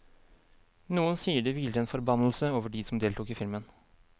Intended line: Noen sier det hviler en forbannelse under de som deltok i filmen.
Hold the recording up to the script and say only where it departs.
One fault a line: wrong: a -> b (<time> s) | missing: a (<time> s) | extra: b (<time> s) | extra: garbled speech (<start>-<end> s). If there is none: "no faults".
wrong: under -> over (2.5 s)